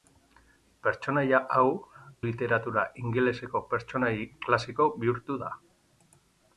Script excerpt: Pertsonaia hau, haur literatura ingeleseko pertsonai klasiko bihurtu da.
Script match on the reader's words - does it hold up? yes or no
no